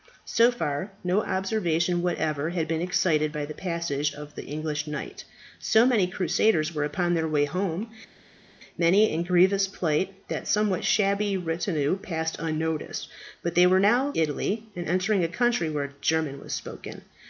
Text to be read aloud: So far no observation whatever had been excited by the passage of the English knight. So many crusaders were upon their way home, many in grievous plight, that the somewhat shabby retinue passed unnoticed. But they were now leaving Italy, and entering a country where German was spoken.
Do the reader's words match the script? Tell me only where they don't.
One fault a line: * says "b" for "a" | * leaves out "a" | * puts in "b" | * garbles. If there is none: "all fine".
* leaves out "leaving"